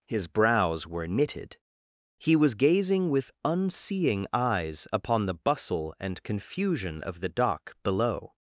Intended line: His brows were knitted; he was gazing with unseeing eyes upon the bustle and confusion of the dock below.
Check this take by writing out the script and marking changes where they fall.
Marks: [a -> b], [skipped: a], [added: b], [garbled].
His brows were knitted; he was gazing with unseeing eyes upon the bustle and confusion of the dock below.